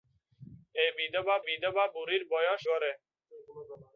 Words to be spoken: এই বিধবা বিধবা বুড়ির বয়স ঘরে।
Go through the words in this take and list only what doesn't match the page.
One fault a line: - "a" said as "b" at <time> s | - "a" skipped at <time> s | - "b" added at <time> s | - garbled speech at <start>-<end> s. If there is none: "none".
none